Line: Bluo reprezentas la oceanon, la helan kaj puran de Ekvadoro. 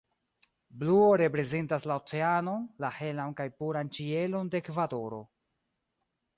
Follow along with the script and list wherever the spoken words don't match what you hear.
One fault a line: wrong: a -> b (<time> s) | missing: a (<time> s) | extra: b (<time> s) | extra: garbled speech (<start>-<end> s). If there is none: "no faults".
extra: ĉielon (4.0 s)